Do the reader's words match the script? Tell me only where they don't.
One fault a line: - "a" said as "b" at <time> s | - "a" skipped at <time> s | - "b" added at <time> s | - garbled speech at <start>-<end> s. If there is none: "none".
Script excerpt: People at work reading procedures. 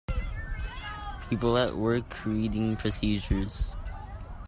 none